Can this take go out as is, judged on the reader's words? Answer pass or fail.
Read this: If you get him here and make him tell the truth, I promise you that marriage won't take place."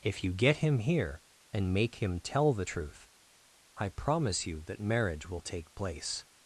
fail